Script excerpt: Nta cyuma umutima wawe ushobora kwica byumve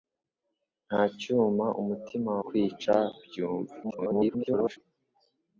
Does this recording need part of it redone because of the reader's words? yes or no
yes